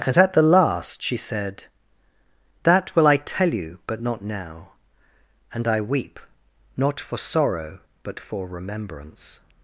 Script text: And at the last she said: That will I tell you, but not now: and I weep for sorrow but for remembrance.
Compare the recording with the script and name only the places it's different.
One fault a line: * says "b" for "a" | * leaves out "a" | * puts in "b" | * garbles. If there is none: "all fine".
* puts in "not"